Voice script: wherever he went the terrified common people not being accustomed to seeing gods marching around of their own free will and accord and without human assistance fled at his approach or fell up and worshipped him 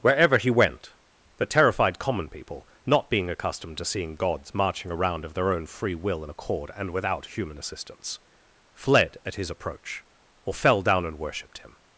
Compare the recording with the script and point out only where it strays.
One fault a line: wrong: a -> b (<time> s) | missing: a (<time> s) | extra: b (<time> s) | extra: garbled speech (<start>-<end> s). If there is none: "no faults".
wrong: up -> down (10.8 s)